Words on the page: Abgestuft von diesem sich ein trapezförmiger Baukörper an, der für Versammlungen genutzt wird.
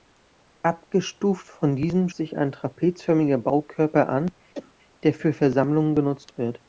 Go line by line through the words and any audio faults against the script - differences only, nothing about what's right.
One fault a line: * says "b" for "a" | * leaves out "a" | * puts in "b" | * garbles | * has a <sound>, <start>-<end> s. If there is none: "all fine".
* has a cough, 4.5-4.7 s